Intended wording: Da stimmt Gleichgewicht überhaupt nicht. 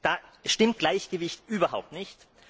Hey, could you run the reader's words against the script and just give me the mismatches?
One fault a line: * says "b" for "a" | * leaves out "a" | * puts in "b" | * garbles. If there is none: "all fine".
all fine